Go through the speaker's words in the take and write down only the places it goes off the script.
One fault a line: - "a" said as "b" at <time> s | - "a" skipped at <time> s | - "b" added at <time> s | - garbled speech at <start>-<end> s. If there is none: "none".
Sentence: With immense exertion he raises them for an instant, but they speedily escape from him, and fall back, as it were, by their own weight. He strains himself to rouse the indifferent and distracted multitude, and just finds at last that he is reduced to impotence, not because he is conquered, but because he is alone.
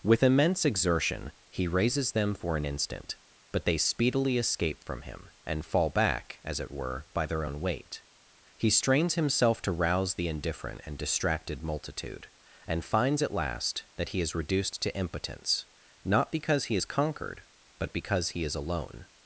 - "just" skipped at 12.8 s